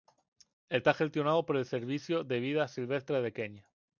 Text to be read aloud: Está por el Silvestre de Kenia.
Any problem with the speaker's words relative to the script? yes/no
yes